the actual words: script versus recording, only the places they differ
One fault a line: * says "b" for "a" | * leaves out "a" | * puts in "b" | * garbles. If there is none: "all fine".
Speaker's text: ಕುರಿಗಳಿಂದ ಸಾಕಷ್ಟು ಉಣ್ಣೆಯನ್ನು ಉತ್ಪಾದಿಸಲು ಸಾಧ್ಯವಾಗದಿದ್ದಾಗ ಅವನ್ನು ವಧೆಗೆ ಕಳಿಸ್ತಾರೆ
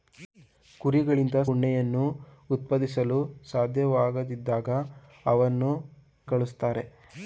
* leaves out "ಸಾಕಷ್ಟು"
* leaves out "ವಧೆಗೆ"